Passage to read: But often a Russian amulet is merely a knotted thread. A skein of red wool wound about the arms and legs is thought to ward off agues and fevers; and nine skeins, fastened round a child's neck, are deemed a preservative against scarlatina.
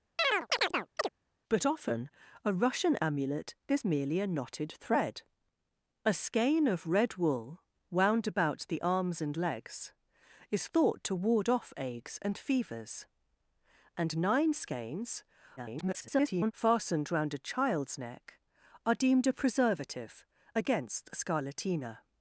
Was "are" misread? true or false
false